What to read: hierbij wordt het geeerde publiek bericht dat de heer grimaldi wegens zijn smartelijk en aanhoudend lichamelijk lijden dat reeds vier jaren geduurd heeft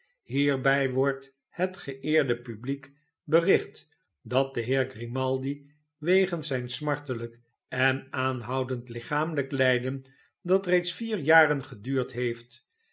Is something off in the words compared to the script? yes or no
no